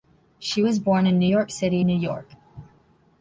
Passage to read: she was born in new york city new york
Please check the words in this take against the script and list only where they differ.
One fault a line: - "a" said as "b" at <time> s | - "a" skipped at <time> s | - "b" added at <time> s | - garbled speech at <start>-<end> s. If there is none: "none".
none